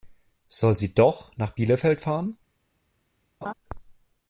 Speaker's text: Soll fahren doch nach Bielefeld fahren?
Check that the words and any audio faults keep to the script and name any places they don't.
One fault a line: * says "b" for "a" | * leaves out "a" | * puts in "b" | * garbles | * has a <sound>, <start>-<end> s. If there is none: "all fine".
* says "sie" for "fahren"
* has a laugh, 3.4-3.5 s